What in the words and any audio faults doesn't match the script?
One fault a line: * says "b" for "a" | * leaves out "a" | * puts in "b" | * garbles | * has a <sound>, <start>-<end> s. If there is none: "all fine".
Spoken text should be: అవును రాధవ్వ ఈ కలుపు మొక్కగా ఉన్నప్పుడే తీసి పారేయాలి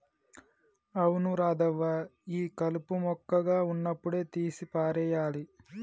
all fine